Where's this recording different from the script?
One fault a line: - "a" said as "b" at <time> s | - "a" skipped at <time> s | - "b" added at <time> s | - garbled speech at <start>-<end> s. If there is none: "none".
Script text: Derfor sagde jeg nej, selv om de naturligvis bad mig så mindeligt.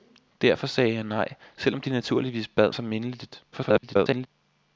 - "mig" skipped at 2.7 s
- garbled speech at 3.5-4.3 s